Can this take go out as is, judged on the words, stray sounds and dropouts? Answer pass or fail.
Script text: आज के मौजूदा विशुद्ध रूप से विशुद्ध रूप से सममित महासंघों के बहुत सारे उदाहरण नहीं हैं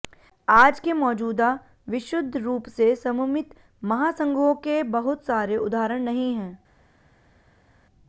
fail